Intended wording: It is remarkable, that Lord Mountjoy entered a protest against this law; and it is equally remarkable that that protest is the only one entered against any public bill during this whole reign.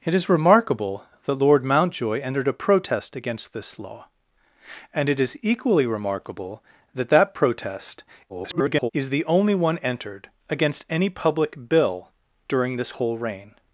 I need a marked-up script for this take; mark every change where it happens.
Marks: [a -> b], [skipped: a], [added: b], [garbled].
It is remarkable, that Lord Mountjoy entered a protest against this law; and it is equally remarkable that that protest [garbled] is the only one entered against any public bill during this whole reign.